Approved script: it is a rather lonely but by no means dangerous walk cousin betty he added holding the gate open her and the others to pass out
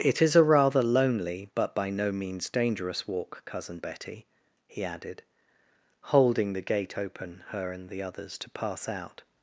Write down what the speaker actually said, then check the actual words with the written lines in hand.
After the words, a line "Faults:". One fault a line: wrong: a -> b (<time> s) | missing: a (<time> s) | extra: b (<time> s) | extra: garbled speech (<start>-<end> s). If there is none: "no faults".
it is a rather lonely but by no means dangerous walk cousin betty he added holding the gate open her and the others to pass out
Faults:
no faults